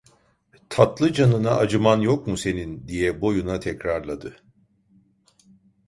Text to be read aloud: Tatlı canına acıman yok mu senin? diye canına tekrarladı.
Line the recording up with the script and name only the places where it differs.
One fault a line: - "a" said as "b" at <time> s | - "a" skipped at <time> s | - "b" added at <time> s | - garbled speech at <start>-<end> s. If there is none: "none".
- "canına" said as "boyuna" at 3.2 s